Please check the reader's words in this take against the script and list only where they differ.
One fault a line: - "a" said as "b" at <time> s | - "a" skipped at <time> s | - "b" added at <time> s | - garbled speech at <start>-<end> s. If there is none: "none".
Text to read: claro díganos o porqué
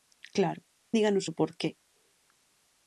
none